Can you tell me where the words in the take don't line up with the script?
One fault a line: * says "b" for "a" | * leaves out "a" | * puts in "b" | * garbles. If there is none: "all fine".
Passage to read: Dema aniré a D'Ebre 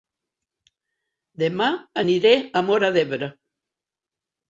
* puts in "Móra"